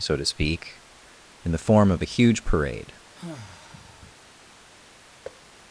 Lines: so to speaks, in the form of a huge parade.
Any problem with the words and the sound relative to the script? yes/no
yes